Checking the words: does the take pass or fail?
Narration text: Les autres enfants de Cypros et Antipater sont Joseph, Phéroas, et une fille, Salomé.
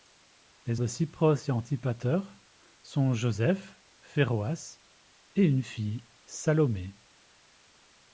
fail